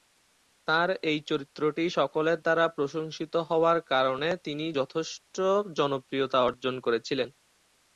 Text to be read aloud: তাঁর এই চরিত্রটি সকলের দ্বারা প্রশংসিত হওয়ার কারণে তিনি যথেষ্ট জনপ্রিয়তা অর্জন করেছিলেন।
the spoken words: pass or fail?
pass